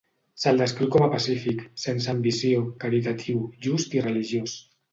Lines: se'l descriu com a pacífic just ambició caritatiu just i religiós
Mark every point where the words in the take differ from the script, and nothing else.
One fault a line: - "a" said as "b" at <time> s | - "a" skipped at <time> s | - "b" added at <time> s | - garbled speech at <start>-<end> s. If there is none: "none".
- "just" said as "sense" at 1.8 s